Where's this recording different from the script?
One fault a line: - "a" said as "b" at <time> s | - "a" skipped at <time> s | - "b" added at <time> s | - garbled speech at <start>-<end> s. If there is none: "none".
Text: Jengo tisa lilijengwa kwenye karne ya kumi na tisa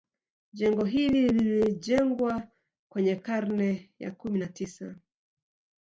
- "tisa" said as "hili" at 0.8 s